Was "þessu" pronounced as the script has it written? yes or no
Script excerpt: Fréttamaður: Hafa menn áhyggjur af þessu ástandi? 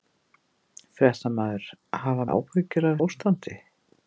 no